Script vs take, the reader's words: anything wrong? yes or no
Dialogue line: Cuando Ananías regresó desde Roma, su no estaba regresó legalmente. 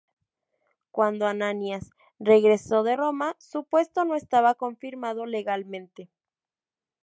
yes